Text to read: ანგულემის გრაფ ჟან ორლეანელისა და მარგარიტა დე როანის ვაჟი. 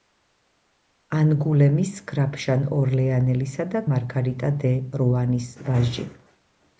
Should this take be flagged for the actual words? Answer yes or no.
no